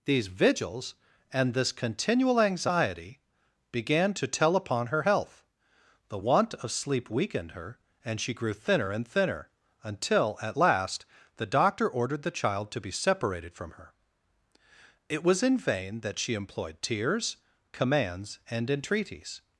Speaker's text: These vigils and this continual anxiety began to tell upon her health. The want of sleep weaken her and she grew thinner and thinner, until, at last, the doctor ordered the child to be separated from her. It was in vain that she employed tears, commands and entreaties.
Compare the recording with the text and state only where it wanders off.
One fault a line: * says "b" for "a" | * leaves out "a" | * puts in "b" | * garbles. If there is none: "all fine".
* says "weakened" for "weaken"